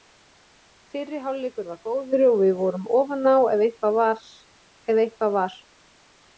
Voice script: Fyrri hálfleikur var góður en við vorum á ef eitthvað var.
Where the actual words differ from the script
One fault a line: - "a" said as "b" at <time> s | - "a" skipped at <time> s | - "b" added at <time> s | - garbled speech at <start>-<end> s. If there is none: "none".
- "en" said as "og" at 2.3 s
- "ofan" added at 3.0 s